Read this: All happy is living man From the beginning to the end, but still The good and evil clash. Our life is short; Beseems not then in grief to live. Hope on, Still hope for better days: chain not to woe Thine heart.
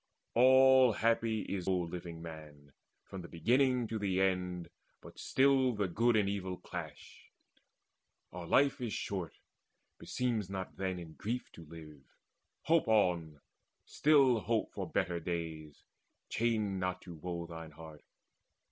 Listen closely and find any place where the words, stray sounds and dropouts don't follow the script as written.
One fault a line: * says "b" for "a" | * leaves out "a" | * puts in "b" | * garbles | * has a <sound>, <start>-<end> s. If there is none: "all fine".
all fine